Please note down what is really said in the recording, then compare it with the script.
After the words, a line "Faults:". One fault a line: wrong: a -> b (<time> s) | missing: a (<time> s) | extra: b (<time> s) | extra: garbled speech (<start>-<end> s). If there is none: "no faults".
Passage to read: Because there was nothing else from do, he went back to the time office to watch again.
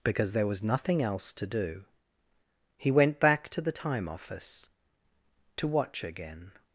Because there was nothing else to do, he went back to the time office to watch again.
Faults:
wrong: from -> to (1.3 s)